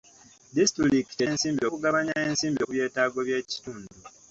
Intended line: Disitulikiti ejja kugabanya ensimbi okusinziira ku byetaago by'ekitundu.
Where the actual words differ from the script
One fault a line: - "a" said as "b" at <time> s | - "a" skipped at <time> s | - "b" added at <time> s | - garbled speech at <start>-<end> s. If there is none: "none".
- "ejja" said as "ensimbi" at 1.3 s
- "okusinziira" skipped at 2.6 s